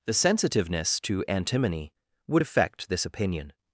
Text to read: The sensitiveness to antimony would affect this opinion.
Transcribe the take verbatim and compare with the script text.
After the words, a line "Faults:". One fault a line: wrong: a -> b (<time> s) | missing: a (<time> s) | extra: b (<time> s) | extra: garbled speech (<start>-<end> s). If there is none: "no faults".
The sensitiveness to antimony would affect this opinion.
Faults:
no faults